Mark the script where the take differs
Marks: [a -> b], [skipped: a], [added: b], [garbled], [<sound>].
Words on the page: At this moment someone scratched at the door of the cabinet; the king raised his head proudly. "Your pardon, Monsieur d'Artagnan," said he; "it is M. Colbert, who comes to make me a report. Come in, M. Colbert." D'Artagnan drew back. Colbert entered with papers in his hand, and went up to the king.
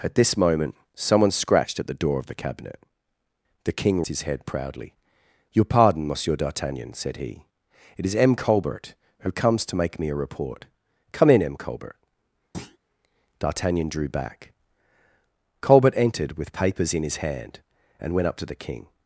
At this moment someone scratched at the door of the cabinet; the king [skipped: raised] his head proudly. "Your pardon, Monsieur d'Artagnan," said he; "it is M. Colbert, who comes to make me a report. Come in, M. Colbert." [thud] D'Artagnan drew back. Colbert entered with papers in his hand, and went up to the king.